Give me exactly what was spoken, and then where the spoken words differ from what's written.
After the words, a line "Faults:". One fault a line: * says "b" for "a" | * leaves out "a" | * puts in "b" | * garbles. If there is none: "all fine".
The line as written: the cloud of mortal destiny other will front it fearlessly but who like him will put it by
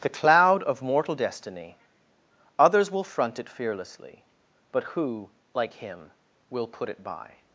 the cloud of mortal destiny others will front it fearlessly but who like him will put it by
Faults:
* says "others" for "other"